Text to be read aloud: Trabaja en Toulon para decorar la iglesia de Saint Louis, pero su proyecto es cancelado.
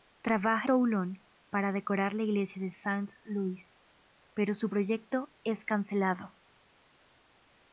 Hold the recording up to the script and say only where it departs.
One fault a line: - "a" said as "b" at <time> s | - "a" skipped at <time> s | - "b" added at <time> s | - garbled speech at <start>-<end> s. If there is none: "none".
- "en" skipped at 0.7 s